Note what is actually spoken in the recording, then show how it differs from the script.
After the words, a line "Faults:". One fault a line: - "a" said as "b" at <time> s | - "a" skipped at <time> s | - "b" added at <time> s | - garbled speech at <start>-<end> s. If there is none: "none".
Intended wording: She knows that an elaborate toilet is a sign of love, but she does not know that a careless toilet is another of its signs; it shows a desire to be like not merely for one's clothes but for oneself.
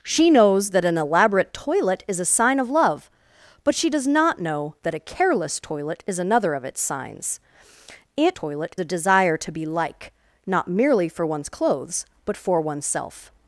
She knows that an elaborate toilet is a sign of love, but she does not know that a careless toilet is another of its signs; it toilet a desire to be like not merely for one's clothes but for oneself.
Faults:
- "shows" said as "toilet" at 8.3 s